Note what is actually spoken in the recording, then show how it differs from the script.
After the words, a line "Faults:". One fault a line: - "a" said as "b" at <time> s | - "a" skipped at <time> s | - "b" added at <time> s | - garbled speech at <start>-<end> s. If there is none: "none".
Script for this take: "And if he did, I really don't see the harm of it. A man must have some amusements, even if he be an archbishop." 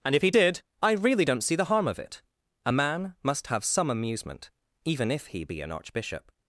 "And if he did, I really don't see the harm of it. A man must have some amusement, even if he be an archbishop."
Faults:
- "amusements" said as "amusement" at 3.9 s